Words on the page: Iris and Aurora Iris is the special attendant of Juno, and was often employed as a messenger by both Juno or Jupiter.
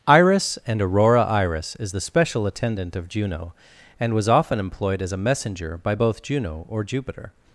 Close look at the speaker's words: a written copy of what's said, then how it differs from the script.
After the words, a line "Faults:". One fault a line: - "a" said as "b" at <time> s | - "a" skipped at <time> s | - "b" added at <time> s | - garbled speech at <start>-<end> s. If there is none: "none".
Iris and Aurora Iris is the special attendant of Juno, and was often employed as a messenger by both Juno or Jupiter.
Faults:
none